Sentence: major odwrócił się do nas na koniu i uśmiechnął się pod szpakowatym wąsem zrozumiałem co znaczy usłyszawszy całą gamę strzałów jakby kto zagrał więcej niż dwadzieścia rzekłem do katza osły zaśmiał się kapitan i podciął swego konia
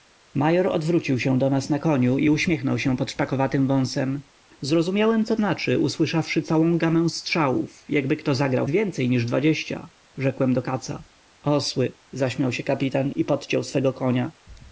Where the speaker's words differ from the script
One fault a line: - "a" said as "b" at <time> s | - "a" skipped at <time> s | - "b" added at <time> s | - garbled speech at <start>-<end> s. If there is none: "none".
none